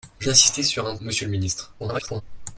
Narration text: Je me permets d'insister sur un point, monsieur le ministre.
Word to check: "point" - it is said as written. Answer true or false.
false